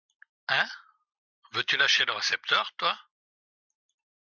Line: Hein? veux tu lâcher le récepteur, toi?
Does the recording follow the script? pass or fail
pass